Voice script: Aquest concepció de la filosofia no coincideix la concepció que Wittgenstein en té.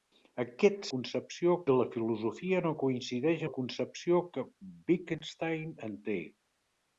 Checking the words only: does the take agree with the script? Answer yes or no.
yes